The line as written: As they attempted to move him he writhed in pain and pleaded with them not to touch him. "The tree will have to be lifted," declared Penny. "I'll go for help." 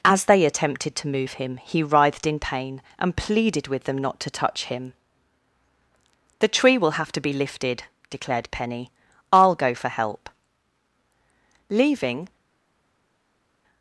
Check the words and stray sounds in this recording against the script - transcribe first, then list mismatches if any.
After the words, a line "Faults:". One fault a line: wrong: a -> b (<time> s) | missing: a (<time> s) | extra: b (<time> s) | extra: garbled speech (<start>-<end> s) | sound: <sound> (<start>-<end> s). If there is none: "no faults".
As they attempted to move him he writhed in pain and pleaded with them not to touch him. "The tree will have to be lifted," declared Penny. "I'll go for help." Leaving
Faults:
extra: Leaving (11.7 s)